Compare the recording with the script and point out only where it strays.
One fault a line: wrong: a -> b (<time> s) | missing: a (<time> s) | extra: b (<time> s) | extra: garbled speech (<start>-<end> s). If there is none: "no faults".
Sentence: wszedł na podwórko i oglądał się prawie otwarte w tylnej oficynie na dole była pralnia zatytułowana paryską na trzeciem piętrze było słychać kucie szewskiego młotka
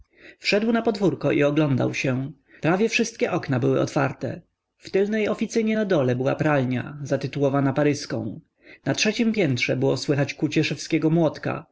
extra: wszystkie okna były (2.9 s)